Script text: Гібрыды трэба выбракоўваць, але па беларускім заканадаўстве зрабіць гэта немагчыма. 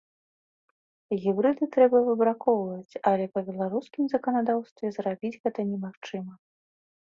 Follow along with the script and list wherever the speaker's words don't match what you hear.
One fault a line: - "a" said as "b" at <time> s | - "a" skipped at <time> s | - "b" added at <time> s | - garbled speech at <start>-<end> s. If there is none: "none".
none